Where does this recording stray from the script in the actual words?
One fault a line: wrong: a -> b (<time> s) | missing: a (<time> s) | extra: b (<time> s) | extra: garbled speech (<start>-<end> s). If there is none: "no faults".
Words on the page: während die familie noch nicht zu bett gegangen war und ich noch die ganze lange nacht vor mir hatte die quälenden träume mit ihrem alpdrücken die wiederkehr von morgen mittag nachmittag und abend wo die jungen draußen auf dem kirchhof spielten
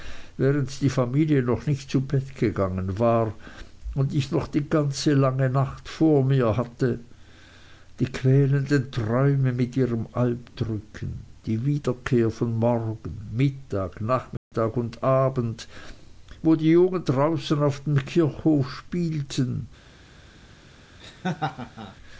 no faults